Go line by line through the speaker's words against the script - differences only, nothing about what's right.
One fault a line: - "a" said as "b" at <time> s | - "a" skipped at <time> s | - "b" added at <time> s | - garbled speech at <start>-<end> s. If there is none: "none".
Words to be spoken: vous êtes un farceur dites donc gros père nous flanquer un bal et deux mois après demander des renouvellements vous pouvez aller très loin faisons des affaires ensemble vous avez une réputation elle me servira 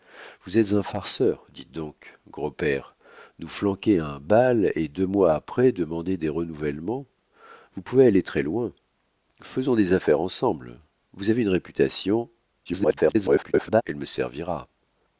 - garbled speech at 12.7-13.8 s